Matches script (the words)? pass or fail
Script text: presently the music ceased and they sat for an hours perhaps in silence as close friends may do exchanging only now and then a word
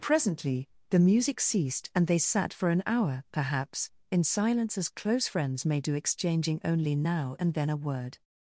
fail